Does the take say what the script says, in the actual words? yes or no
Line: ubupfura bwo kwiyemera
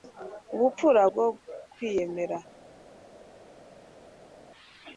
yes